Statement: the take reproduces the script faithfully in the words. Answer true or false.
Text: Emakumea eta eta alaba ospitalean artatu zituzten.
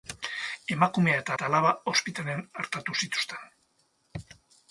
true